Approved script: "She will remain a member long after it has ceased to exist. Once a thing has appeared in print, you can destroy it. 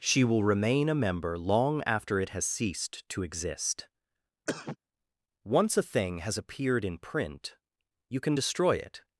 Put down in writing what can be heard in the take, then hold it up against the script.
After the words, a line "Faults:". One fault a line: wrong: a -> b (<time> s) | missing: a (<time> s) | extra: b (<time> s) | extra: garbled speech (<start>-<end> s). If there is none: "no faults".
"She will remain a member long after it has ceased to exist. Once a thing has appeared in print, you can destroy it.
Faults:
no faults